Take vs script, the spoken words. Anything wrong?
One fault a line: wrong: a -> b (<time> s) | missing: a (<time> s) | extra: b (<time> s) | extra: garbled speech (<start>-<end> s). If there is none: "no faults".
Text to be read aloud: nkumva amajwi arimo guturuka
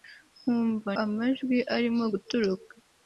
no faults